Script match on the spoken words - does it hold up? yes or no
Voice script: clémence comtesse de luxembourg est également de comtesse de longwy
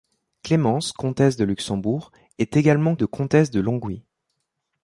yes